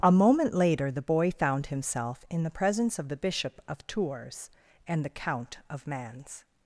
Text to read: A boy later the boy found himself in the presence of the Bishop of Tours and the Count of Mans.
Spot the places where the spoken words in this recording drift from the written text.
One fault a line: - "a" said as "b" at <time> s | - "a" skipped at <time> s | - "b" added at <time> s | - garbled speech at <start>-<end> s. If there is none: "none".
- "boy" said as "moment" at 0.1 s